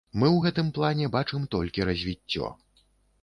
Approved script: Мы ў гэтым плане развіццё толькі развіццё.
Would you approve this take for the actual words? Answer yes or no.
no